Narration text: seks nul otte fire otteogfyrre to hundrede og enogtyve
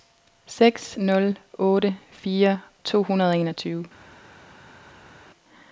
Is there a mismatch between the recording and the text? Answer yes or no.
yes